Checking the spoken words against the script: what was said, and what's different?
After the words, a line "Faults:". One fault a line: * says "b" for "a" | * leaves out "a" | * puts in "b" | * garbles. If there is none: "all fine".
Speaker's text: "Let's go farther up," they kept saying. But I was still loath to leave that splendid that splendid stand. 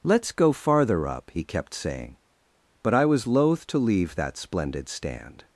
"Let's go farther up," he kept saying. But I was loath to leave that splendid stand.
Faults:
* says "he" for "they"
* leaves out "still"
* leaves out "that splendid"